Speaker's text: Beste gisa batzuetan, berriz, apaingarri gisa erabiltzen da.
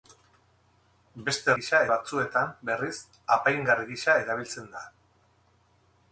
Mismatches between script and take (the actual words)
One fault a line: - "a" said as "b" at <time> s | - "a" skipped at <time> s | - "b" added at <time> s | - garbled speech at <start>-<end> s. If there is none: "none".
none